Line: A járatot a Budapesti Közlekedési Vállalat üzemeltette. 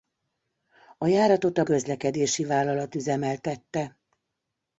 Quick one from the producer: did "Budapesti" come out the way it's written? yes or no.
no